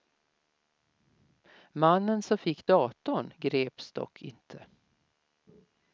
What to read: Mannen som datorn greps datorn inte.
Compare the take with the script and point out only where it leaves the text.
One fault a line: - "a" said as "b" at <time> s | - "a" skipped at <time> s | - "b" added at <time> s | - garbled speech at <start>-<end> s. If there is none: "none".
- "fick" added at 2.4 s
- "datorn" said as "dock" at 3.9 s